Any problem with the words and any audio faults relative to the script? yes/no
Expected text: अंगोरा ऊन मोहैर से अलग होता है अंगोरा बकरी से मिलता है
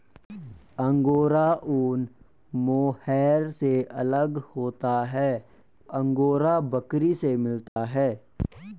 yes